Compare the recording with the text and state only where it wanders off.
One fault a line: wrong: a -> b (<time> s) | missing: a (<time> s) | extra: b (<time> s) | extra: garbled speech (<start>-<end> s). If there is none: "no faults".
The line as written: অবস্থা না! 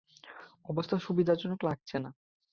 extra: সুবিধাজনক লাগছে (1.0 s)